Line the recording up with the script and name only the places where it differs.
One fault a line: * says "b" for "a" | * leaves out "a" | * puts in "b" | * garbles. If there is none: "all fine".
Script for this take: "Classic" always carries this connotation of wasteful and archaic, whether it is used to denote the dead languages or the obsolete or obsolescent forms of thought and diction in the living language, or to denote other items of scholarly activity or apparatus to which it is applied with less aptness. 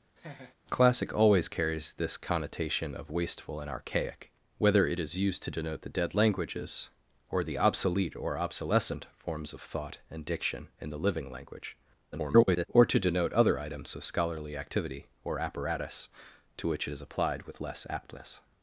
* garbles